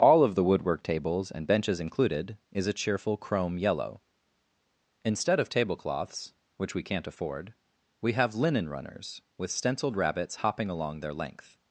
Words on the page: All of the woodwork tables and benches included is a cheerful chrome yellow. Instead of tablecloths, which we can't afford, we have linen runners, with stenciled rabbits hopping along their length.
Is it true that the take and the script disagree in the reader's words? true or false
false